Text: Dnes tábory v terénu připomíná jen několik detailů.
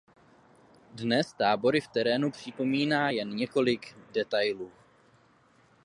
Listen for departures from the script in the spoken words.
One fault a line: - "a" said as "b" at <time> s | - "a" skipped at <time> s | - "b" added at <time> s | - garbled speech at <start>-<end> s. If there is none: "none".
none